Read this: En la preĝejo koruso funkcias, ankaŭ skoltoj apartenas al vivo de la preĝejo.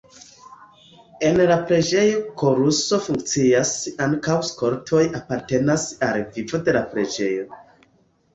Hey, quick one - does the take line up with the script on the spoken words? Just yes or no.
yes